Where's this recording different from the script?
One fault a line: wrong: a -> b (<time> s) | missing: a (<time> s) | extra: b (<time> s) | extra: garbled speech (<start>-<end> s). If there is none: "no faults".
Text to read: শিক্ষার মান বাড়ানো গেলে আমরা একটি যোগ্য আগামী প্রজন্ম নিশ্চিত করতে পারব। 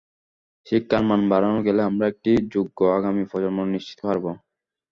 missing: করতে (4.0 s)